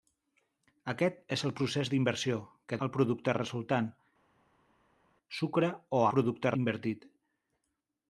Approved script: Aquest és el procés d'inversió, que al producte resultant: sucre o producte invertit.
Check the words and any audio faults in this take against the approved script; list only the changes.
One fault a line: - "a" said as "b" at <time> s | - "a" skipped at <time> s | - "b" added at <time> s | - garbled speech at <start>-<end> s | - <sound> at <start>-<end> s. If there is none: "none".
none